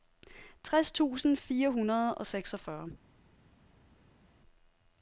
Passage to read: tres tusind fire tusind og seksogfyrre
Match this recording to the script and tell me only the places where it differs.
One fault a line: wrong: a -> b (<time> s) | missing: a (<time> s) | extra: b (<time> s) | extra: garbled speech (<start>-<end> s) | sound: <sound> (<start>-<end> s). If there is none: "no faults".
wrong: tusind -> hundrede (1.7 s)